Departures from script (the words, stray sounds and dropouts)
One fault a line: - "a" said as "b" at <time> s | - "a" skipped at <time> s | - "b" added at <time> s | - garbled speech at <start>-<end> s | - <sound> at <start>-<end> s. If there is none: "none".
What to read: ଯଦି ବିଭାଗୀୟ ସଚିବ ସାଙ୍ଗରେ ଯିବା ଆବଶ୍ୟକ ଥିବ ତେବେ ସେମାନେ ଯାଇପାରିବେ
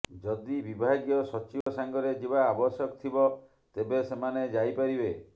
- dropout at 1.6-1.7 s